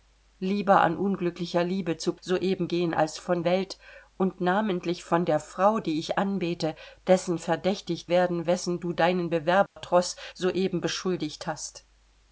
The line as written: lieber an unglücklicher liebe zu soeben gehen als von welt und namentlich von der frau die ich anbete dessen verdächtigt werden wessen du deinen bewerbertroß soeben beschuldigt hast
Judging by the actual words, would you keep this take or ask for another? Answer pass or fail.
pass